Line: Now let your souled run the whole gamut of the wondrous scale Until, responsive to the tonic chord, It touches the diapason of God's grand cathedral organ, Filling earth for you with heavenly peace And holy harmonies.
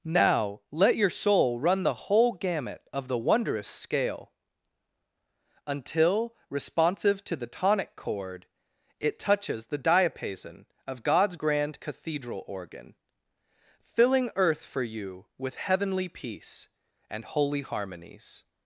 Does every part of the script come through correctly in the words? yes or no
no